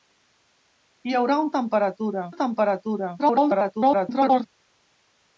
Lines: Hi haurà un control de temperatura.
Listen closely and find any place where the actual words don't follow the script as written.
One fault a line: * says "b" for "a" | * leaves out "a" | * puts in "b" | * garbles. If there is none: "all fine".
* says "temperatura" for "control"
* garbles